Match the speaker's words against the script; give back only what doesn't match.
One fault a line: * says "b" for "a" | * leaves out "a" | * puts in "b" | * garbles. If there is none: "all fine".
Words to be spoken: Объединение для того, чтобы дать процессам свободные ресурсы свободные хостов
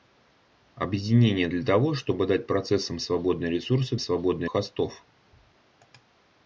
all fine